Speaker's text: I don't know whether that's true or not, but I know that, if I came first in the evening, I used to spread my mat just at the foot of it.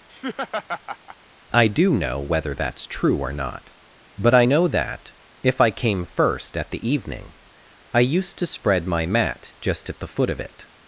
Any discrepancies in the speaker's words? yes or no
yes